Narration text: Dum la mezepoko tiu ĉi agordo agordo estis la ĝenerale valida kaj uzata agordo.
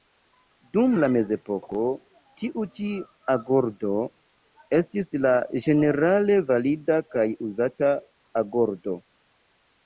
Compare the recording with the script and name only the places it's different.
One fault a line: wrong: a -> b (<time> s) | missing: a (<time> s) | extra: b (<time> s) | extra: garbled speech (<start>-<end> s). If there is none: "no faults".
missing: agordo (3.9 s)